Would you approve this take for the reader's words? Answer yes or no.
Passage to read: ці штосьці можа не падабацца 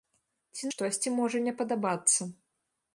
yes